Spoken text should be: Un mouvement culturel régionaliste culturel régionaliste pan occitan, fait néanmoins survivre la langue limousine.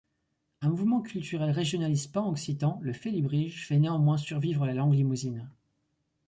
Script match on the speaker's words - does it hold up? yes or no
no